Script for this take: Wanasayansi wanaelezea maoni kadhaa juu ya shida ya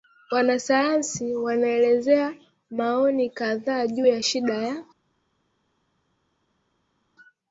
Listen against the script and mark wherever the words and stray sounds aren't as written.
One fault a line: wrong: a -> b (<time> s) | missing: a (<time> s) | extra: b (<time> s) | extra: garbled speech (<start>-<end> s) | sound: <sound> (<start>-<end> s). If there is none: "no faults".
no faults